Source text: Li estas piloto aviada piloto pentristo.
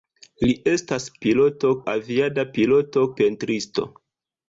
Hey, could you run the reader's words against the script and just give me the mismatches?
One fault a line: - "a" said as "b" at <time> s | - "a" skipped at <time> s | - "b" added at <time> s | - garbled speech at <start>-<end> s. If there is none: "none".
none